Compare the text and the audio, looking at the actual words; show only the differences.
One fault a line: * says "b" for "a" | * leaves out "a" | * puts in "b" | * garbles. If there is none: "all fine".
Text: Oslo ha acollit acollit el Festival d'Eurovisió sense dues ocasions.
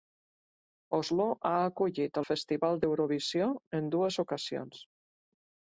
* leaves out "acollit"
* says "en" for "sense"